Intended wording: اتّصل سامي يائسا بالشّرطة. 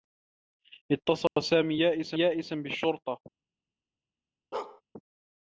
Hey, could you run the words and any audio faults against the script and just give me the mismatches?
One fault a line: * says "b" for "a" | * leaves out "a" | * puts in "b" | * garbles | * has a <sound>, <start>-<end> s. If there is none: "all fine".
* has a dropout, 1.3-1.4 s
* puts in "يائسا"
* has a bark, 4.5-4.8 s